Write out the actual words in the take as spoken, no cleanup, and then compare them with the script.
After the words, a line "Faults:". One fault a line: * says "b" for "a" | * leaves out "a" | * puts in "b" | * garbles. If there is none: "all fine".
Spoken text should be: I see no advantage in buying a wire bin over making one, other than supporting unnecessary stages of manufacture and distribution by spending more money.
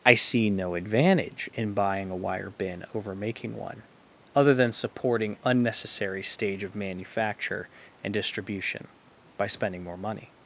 I see no advantage in buying a wire bin over making one, other than supporting unnecessary stage of manufacture and distribution by spending more money.
Faults:
* says "stage" for "stages"